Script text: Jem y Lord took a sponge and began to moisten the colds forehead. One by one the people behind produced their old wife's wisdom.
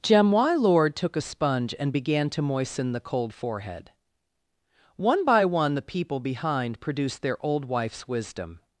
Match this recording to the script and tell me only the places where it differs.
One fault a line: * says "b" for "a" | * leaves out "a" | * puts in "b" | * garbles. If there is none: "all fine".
* says "cold" for "colds"